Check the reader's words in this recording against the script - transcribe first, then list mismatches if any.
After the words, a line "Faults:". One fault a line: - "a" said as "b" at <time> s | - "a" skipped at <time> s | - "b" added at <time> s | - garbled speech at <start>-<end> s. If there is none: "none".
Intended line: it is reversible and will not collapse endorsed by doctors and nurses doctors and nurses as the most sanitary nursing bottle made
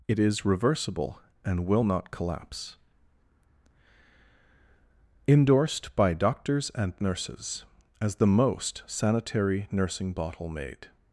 it is reversible and will not collapse endorsed by doctors and nurses as the most sanitary nursing bottle made
Faults:
- "doctors and nurses" skipped at 7.6 s